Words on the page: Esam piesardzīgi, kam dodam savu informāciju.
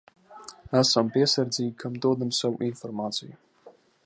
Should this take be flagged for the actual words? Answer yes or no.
no